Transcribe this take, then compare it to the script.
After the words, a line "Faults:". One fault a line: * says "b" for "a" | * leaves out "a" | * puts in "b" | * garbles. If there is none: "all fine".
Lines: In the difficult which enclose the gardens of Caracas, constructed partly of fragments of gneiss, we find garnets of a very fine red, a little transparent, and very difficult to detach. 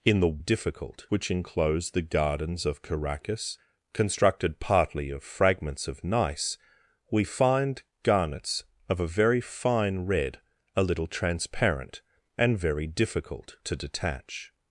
In the difficult which enclose the gardens of Caracas, constructed partly of fragments of gneiss, we find garnets of a very fine red, a little transparent, and very difficult to detach.
Faults:
all fine